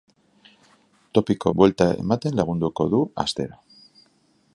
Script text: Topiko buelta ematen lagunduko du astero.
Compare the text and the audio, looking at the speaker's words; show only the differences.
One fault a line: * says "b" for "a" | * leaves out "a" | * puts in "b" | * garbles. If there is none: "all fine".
all fine